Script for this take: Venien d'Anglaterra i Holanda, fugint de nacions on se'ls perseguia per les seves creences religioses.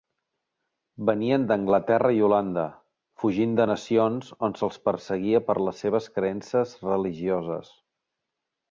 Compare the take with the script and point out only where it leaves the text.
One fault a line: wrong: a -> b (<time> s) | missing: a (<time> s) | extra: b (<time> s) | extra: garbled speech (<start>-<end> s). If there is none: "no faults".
no faults